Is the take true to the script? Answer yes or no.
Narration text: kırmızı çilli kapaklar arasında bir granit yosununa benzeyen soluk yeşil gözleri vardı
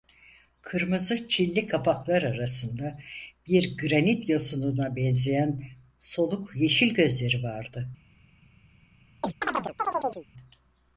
yes